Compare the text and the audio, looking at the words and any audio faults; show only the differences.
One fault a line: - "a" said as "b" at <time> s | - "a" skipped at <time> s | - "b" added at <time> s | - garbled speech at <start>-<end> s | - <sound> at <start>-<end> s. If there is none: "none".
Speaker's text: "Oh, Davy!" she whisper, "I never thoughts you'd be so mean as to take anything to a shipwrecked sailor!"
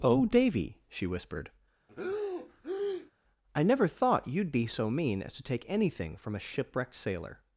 - "whisper" said as "whispered" at 1.1 s
- breath at 1.9-3.1 s
- "thoughts" said as "thought" at 3.9 s
- "to" said as "from" at 6.1 s